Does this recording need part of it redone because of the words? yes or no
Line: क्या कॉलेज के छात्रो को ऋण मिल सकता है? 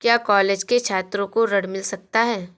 no